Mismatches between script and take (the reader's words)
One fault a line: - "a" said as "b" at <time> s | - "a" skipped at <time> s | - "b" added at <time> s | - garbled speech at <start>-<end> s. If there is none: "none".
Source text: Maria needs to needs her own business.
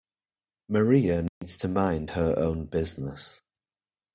- "needs" said as "mind" at 1.7 s